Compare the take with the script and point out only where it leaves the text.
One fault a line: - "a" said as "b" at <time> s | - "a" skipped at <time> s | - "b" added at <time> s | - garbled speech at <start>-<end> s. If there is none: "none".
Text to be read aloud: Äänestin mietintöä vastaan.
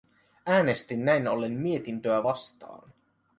- "näin ollen" added at 1.1 s